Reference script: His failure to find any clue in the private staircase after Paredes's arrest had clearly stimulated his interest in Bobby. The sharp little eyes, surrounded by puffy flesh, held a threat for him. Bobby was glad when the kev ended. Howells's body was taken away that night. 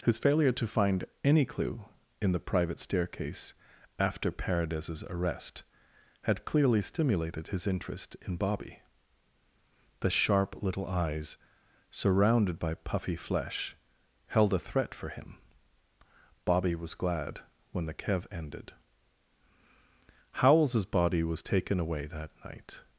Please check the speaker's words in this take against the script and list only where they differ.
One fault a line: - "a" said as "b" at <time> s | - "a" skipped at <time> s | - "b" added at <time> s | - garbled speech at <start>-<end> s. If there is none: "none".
none